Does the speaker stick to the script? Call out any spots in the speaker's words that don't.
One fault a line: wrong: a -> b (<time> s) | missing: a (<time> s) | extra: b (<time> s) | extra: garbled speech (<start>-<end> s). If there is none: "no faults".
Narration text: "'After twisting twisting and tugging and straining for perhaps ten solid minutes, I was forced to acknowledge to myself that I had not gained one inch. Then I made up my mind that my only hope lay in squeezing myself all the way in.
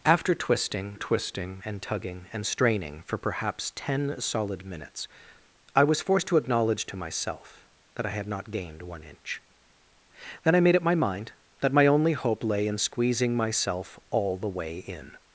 no faults